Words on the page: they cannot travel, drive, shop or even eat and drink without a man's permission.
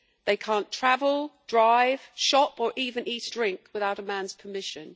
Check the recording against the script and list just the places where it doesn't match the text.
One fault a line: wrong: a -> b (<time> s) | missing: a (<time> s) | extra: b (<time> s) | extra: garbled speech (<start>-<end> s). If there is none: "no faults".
missing: and (3.3 s)